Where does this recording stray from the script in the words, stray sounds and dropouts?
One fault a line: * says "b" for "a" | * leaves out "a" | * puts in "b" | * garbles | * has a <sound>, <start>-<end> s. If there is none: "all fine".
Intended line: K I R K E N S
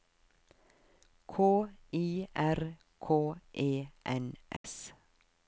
* has a dropout, 4.6-4.6 s